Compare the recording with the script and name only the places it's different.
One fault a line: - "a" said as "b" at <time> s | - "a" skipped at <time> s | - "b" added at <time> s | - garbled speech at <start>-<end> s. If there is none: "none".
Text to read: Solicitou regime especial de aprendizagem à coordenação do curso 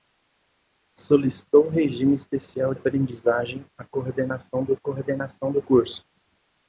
- "de" skipped at 2.7 s
- "coordenação do" added at 4.7 s